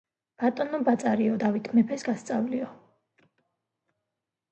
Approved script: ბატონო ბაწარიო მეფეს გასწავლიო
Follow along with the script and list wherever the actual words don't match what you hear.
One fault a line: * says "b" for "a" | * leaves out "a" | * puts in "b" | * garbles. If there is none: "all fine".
* puts in "დავით"